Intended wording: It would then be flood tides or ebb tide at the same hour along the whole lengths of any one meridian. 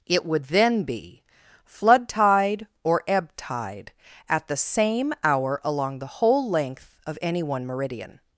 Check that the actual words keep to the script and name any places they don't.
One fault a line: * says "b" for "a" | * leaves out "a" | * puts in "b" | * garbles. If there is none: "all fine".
* says "tide" for "tides"
* says "length" for "lengths"